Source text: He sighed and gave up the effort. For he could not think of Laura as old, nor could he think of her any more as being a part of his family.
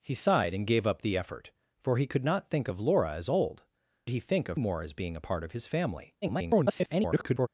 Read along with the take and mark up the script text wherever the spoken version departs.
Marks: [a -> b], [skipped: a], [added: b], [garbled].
He sighed and gave up the effort. For he could not think of Laura as old, [skipped: nor could] he think of [skipped: her any] more as being a part of his family. [garbled]